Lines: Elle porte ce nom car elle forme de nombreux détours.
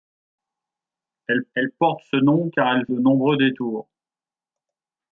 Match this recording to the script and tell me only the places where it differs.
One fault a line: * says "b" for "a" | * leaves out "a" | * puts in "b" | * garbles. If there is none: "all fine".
* puts in "elle"
* leaves out "forme"